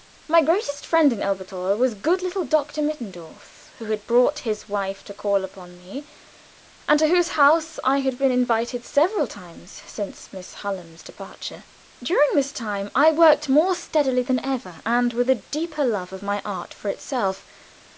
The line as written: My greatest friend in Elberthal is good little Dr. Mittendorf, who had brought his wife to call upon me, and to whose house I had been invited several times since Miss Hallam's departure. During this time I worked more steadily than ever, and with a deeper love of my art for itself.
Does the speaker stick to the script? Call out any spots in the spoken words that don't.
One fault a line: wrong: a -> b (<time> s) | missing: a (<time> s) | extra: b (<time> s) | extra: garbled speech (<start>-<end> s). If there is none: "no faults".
wrong: is -> was (1.8 s)